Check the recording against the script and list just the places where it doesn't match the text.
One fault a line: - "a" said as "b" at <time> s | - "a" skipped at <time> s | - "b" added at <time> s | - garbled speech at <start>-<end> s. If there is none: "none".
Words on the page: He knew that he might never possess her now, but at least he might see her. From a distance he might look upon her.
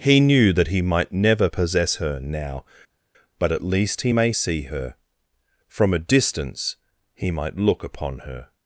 - "might" said as "may" at 4.1 s